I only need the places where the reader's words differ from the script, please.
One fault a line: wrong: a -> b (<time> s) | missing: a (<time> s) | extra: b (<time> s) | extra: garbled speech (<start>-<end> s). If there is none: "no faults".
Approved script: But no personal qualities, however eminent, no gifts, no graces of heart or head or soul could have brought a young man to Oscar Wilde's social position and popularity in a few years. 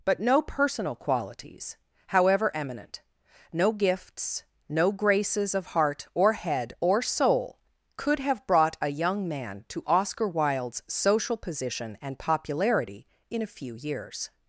no faults